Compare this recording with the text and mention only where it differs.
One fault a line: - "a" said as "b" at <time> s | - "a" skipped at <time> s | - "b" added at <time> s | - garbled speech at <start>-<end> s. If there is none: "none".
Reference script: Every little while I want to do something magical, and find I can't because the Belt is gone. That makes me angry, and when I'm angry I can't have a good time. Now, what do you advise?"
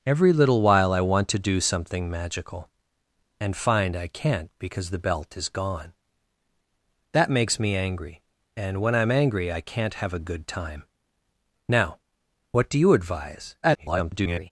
- garbled speech at 13.6-14.5 s